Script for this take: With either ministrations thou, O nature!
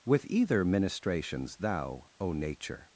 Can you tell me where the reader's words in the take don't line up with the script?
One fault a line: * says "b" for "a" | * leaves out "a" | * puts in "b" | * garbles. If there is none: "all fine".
all fine